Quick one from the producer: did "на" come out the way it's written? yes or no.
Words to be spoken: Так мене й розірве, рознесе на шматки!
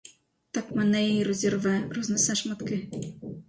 no